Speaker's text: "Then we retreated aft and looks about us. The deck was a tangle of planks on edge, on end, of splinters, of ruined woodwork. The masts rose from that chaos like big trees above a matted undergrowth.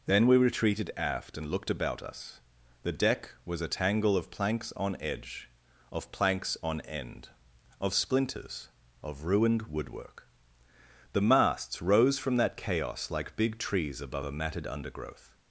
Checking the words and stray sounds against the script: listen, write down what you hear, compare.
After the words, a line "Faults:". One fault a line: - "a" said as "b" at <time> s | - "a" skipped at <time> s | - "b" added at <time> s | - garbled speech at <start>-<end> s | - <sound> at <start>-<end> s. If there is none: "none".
"Then we retreated aft and looked about us. The deck was a tangle of planks on edge, of planks on end, of splinters, of ruined woodwork. The masts rose from that chaos like big trees above a matted undergrowth.
Faults:
- "looks" said as "looked" at 1.5 s
- "of planks" added at 5.9 s